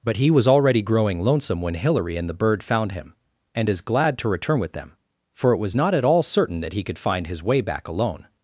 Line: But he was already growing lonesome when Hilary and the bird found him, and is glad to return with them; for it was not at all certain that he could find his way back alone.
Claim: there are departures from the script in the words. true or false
false